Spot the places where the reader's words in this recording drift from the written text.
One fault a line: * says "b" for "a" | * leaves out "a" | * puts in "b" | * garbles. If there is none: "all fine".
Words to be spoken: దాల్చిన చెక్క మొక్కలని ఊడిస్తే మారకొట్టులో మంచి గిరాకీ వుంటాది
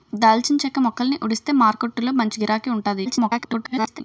* garbles